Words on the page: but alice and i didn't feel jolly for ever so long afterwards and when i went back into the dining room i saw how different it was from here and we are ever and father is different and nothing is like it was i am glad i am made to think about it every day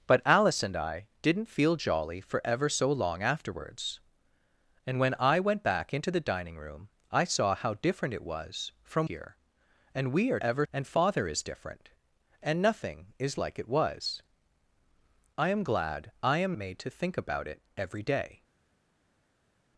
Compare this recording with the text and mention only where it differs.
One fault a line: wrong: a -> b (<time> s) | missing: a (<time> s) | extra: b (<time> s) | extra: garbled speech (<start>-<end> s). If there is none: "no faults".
no faults